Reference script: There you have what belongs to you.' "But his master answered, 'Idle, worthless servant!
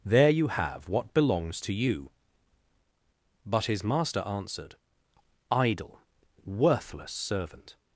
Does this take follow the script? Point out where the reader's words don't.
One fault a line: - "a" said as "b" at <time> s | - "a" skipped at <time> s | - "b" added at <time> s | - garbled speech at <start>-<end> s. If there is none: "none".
none